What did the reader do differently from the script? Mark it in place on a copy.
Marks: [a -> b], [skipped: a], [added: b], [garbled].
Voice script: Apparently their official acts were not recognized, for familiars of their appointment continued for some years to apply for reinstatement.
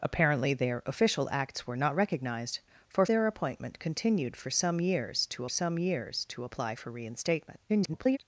Apparently their official acts were not recognized, for [skipped: familiars of] their appointment continued for some years to [added: some years to] apply for reinstatement. [garbled]